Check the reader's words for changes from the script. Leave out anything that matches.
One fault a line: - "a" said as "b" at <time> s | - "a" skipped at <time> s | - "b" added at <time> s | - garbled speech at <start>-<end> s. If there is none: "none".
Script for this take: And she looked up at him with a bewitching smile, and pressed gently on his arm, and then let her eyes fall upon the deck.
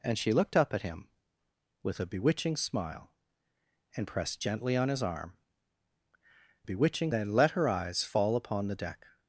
- "and" said as "bewitching" at 6.6 s